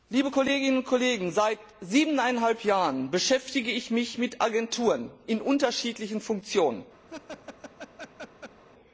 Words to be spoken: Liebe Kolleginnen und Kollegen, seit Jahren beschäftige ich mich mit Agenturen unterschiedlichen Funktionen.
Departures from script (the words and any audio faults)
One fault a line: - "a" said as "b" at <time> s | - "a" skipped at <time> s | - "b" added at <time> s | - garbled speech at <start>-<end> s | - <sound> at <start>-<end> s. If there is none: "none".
- "siebeneinhalb" added at 1.8 s
- "in" added at 5.2 s
- laugh at 7.1-8.6 s